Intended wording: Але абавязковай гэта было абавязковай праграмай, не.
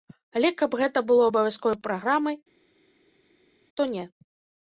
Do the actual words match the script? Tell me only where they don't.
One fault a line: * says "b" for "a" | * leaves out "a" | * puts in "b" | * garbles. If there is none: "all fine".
* says "каб" for "абавязковай"
* puts in "то"